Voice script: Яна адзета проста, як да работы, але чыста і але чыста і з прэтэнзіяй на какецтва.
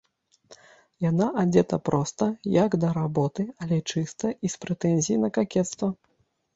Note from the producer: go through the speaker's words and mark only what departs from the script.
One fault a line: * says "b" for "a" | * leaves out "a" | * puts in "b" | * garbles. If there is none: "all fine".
* leaves out "але чыста і"